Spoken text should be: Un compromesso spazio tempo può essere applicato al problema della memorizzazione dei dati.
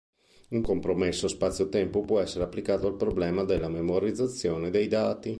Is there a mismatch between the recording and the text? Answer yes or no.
no